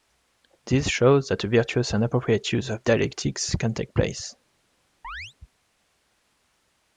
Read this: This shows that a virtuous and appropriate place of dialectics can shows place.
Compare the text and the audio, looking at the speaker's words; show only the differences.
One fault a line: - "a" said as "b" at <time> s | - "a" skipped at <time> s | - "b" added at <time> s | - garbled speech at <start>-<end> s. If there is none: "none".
- "place" said as "use" at 2.5 s
- "shows" said as "take" at 3.8 s